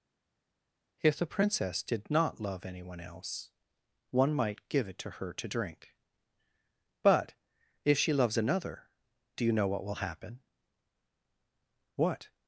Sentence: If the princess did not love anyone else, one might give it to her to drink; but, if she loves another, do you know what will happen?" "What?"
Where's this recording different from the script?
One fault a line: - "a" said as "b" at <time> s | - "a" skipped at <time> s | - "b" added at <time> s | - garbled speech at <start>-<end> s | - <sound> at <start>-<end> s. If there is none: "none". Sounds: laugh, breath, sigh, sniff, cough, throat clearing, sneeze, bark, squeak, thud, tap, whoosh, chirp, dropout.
none